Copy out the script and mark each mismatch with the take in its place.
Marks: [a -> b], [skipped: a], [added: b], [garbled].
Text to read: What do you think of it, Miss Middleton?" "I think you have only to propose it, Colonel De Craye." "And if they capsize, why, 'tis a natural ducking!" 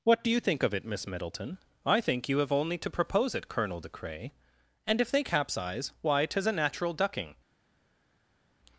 What do you think of it, Miss Middleton?" "I think you have only to propose it, Colonel De Craye." "And if they capsize, why, 'tis a natural ducking!"